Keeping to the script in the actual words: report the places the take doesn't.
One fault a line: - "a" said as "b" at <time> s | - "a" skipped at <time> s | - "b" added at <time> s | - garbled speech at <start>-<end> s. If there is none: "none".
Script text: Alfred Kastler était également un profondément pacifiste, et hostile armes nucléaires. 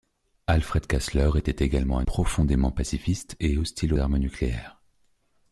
none